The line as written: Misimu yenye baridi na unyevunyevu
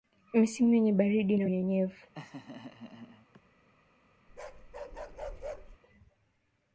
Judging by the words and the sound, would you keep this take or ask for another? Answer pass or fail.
fail